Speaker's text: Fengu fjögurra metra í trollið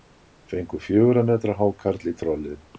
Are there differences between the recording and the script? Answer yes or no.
yes